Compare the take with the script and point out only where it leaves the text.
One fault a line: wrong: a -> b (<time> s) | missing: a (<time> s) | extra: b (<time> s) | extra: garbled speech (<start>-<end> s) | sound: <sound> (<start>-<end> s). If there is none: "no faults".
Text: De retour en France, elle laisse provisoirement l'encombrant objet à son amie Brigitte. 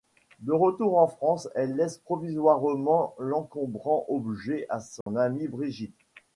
sound: dropout (5.0-5.1 s)